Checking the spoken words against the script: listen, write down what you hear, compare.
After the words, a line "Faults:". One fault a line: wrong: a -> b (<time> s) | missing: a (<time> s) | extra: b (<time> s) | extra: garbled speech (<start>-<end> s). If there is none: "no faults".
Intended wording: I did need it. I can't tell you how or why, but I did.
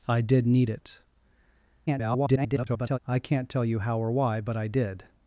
I did need it. [garbled] I can't tell you how or why, but I did.
Faults:
extra: garbled speech (1.9-3.0 s)